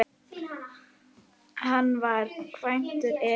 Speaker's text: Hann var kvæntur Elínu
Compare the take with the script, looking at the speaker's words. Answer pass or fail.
pass